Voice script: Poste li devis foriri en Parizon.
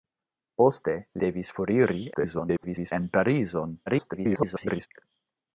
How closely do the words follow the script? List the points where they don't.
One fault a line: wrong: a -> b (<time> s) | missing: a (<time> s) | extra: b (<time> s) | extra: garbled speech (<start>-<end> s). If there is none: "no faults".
missing: li (0.9 s)
extra: garbled speech (2.1-2.9 s)
extra: garbled speech (3.9-4.9 s)